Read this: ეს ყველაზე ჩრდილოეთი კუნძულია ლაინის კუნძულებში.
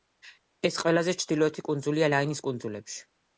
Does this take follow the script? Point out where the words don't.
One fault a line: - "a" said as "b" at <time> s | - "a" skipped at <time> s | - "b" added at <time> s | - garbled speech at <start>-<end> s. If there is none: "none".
none